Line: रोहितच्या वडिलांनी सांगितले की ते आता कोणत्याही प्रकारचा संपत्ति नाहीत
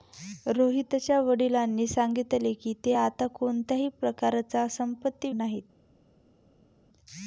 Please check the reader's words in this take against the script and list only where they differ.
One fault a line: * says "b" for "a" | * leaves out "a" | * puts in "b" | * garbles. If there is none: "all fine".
all fine